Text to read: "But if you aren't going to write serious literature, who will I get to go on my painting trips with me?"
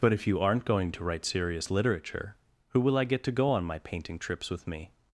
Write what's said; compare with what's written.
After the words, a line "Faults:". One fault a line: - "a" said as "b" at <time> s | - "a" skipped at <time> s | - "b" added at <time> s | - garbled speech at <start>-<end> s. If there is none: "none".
"But if you aren't going to write serious literature, who will I get to go on my painting trips with me?"
Faults:
none